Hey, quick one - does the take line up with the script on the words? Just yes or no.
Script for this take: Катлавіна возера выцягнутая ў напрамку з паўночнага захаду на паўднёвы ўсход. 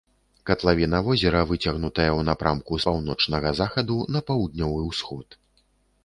yes